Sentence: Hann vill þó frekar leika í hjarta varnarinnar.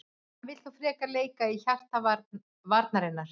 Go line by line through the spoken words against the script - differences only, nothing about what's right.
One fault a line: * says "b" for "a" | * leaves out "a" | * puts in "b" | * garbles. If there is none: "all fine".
all fine